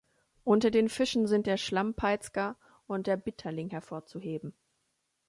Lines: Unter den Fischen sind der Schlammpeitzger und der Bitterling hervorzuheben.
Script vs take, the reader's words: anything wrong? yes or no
no